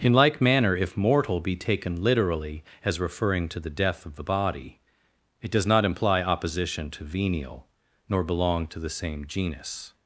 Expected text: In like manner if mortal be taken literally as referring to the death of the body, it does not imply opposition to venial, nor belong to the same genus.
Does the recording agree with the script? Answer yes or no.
yes